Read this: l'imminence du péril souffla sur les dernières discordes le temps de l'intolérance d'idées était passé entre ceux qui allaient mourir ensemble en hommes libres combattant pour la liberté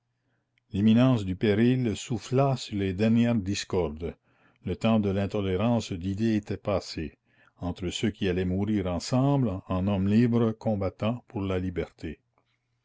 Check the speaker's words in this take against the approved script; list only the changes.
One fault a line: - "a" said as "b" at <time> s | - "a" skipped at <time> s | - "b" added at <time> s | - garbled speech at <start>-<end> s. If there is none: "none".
none